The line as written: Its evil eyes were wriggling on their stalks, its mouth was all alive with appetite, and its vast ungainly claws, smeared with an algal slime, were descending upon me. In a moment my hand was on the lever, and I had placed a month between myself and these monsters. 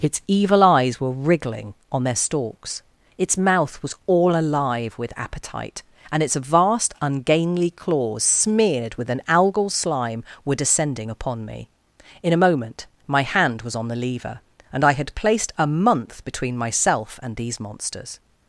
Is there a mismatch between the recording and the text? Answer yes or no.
no